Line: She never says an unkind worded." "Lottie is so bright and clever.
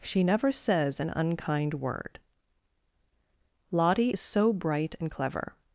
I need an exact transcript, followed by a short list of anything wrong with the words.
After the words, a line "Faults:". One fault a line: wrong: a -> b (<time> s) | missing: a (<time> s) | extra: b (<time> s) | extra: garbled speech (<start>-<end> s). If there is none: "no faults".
She never says an unkind word." "Lottie is so bright and clever.
Faults:
wrong: worded -> word (1.8 s)